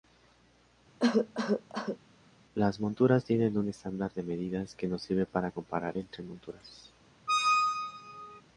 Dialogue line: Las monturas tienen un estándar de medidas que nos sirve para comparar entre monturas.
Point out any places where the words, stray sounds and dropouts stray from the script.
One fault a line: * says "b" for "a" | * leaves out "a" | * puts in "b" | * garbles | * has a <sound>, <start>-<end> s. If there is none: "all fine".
* has a cough, 1.0-2.0 s
* has a squeak, 7.3-8.4 s